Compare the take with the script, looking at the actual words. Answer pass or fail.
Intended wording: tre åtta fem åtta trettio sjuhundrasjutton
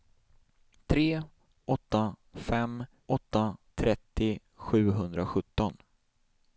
pass